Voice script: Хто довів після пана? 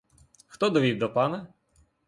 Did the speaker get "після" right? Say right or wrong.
wrong